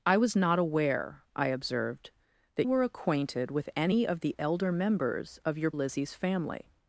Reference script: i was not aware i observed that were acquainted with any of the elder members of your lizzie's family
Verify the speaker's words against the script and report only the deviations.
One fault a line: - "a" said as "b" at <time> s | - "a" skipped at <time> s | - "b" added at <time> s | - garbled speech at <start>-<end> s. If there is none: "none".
none